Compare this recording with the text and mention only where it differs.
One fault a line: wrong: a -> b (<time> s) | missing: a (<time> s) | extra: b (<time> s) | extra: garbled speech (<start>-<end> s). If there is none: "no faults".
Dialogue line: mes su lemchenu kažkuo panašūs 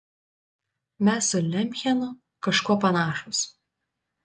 no faults